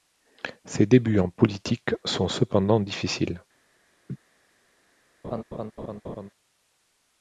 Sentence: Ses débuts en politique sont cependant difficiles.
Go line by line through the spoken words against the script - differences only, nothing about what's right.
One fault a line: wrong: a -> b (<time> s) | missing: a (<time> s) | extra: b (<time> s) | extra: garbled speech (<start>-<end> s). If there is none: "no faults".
no faults